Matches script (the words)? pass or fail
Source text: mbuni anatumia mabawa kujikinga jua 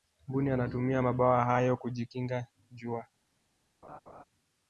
fail